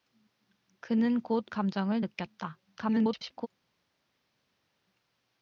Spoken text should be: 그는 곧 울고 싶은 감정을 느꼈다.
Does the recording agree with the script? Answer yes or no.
no